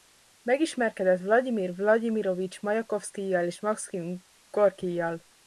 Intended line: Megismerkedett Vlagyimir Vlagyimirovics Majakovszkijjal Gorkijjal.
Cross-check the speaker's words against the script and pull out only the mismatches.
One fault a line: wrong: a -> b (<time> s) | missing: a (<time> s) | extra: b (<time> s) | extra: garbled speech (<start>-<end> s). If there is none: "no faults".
extra: és Makszim (3.5 s)